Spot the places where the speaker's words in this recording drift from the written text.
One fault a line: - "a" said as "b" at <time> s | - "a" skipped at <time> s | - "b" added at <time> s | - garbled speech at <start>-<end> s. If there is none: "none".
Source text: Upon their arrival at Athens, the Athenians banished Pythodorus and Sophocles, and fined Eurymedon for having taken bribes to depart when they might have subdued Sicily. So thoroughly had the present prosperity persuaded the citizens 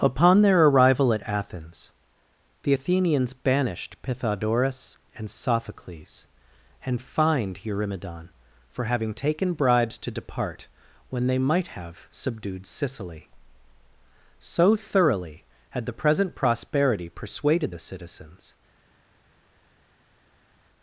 none